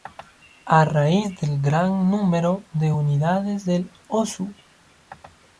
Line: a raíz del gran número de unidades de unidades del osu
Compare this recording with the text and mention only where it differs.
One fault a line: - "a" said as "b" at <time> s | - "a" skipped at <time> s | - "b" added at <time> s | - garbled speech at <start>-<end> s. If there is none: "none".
- "de unidades" skipped at 3.7 s